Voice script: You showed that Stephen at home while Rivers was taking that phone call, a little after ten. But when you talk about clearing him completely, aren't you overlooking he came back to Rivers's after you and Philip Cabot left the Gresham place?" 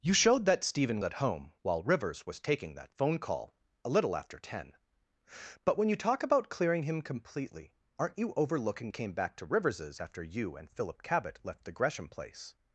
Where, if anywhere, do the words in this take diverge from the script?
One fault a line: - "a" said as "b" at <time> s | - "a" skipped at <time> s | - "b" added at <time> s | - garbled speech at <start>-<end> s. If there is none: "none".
none